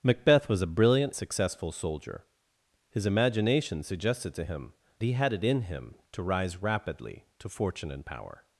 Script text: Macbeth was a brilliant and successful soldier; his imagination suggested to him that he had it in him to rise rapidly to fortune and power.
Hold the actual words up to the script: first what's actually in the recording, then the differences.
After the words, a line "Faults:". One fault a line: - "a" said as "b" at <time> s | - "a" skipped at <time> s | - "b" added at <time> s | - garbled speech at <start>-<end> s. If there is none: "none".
Macbeth was a brilliant successful soldier; his imagination suggested to him he had it in him to rise rapidly to fortune and power.
Faults:
- "and" skipped at 1.1 s
- "that" skipped at 4.7 s